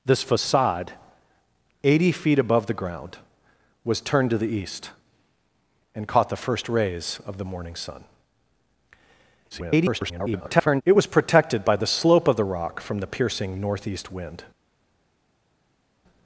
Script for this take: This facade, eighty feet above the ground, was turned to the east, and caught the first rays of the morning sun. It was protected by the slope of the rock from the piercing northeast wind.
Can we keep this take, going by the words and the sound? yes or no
no